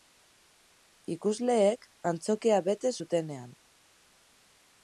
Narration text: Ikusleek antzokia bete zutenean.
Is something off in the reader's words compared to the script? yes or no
no